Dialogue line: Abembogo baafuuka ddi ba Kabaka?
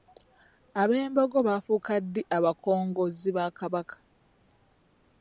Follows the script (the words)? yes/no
no